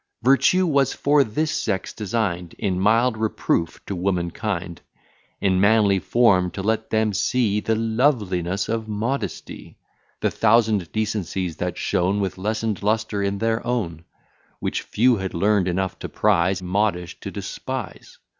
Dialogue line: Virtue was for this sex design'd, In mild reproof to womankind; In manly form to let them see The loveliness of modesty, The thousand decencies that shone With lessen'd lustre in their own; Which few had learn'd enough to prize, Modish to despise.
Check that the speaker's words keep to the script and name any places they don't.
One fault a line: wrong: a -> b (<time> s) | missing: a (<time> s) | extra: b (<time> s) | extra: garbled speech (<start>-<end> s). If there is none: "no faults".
no faults